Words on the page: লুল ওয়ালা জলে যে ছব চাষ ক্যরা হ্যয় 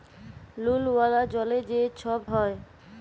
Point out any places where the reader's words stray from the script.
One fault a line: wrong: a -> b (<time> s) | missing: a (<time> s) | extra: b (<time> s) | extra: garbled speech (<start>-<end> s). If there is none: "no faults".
missing: চাষ ক্যরা (2.2 s)